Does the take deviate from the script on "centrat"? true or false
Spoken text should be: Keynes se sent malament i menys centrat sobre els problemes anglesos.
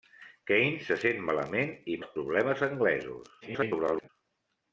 true